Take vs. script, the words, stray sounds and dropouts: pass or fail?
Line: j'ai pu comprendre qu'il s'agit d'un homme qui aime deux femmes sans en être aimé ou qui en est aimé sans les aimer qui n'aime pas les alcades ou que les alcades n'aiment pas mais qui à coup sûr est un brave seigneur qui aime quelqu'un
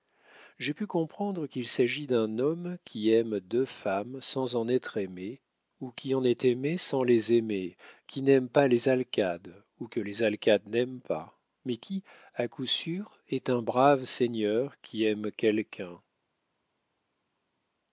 pass